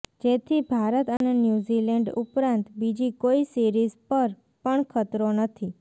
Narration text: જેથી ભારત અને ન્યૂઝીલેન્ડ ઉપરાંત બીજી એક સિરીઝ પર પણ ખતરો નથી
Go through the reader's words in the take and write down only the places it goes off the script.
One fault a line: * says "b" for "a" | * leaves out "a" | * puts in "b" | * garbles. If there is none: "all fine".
* says "કોઈ" for "એક"